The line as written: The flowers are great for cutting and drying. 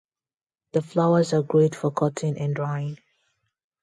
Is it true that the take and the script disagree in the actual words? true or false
false